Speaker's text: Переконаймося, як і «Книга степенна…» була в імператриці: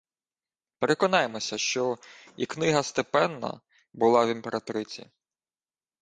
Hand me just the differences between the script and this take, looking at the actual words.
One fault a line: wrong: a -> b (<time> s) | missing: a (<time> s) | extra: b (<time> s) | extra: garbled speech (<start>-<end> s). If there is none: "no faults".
wrong: як -> що (1.6 s)